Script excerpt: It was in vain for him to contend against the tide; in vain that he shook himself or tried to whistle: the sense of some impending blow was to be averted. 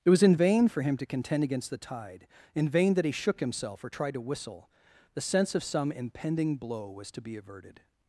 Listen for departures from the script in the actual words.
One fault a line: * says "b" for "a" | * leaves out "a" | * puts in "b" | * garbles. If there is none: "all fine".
all fine